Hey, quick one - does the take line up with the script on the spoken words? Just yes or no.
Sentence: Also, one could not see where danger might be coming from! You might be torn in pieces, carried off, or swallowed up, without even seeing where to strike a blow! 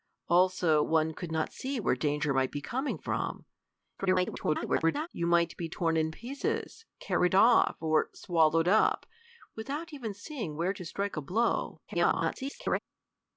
no